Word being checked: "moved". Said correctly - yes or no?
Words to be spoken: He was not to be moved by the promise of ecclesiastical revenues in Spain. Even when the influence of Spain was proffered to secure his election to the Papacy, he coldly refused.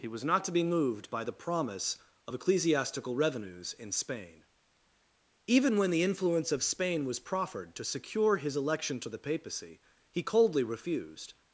yes